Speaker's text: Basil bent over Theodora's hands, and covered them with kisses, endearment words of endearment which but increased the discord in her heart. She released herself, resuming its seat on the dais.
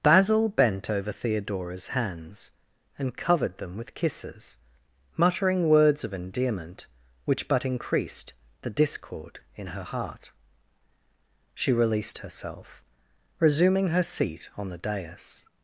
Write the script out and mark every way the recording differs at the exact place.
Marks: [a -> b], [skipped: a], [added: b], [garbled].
Basil bent over Theodora's hands, and covered them with kisses, [endearment -> muttering] words of endearment which but increased the discord in her heart. She released herself, resuming [its -> her] seat on the dais.